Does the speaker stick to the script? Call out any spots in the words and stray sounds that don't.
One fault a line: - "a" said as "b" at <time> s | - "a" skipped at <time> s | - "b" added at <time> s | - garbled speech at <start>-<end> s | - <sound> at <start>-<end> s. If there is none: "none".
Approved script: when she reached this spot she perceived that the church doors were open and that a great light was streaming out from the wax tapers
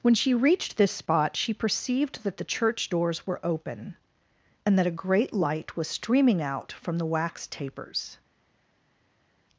none